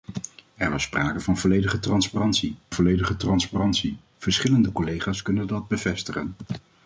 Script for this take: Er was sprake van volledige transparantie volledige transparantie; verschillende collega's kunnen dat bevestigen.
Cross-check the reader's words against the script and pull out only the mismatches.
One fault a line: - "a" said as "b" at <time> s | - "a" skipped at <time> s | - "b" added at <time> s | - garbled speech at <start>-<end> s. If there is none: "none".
none